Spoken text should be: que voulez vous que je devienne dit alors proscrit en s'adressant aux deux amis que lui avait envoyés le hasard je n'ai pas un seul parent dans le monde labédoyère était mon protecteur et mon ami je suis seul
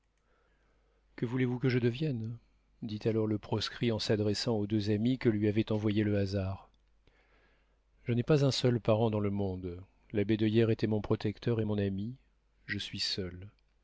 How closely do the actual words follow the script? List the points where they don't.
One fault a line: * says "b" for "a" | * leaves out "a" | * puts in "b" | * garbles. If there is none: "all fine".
* puts in "le"